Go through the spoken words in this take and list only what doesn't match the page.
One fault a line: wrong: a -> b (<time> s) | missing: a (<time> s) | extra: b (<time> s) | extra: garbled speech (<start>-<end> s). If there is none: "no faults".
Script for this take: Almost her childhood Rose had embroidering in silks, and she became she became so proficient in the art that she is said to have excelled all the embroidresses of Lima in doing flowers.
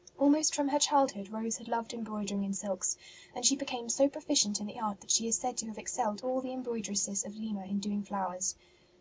extra: from (0.6 s)
extra: loved (1.7 s)
missing: she became (3.9 s)